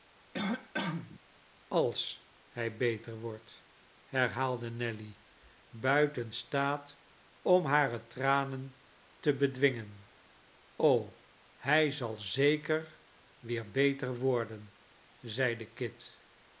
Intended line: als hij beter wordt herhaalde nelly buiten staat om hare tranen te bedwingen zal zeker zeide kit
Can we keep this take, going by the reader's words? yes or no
no